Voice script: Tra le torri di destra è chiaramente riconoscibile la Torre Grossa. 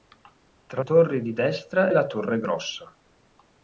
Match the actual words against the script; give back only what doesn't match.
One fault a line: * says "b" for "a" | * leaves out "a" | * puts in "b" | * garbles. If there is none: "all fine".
* leaves out "le"
* leaves out "è chiaramente riconoscibile"